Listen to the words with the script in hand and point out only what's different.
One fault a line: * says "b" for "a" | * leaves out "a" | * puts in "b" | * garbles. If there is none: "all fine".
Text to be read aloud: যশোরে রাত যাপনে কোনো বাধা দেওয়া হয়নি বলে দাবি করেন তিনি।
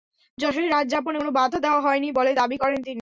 all fine